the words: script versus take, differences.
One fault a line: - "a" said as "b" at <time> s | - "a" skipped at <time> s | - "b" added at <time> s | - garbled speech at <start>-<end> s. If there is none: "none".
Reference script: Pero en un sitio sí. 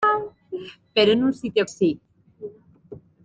none